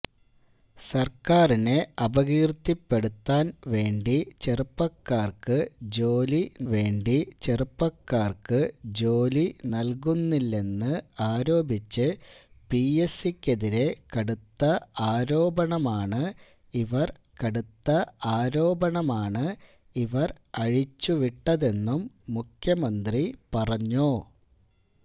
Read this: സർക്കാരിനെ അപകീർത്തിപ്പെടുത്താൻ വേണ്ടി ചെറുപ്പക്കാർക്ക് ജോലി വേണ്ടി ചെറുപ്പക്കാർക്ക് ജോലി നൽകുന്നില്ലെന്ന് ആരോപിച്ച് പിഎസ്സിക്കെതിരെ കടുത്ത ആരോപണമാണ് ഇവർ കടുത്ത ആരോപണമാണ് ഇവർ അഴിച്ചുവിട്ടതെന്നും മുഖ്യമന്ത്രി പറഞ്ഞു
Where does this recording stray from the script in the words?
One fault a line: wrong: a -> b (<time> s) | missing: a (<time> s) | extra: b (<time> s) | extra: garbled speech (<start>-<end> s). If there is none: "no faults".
no faults